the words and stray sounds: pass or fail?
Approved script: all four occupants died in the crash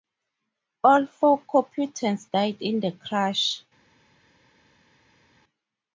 pass